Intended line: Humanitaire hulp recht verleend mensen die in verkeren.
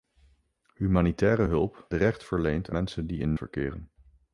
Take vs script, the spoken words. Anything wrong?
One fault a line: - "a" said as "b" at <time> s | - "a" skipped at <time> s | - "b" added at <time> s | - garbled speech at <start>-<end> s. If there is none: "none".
none